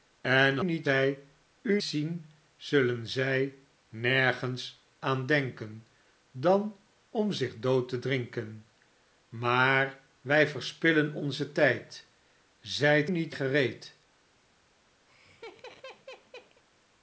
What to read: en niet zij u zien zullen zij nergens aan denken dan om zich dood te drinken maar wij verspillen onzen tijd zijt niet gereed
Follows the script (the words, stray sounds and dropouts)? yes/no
no